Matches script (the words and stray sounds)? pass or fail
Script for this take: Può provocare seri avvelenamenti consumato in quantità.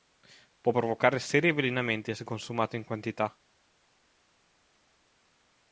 fail